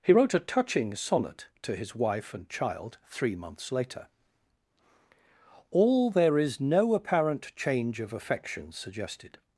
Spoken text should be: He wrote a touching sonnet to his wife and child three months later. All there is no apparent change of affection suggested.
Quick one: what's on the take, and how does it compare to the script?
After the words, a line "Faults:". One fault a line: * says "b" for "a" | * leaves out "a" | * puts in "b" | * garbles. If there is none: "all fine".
He wrote a touching sonnet to his wife and child three months later. All there is no apparent change of affection suggested.
Faults:
all fine